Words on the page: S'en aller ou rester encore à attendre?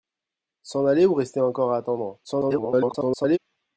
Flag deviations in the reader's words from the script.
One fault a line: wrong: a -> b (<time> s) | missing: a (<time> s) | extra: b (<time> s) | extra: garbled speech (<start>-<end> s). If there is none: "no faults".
extra: garbled speech (2.2-3.4 s)